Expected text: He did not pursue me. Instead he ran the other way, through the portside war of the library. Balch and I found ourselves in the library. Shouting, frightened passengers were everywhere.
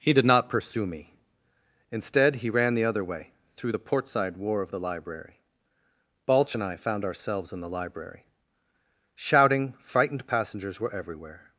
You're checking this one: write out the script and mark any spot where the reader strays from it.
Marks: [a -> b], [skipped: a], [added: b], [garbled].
He did not pursue me. Instead he ran the other way, through the portside war of the library. Balch and I found ourselves in the library. Shouting, frightened passengers were everywhere.